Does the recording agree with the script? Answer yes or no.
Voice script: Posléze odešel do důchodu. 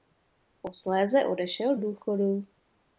no